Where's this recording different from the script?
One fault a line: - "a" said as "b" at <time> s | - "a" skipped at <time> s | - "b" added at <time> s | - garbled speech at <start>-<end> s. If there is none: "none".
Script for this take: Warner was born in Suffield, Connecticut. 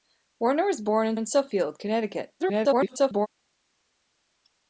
- "in" added at 1.1 s
- garbled speech at 2.4-3.3 s